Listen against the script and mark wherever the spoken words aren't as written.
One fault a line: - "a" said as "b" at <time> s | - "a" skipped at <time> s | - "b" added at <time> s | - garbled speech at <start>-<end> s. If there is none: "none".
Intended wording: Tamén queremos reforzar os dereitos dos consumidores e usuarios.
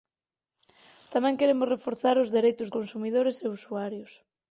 - "dos" skipped at 2.7 s